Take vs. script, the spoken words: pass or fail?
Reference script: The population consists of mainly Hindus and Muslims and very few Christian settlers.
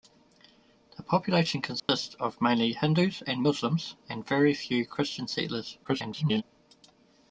fail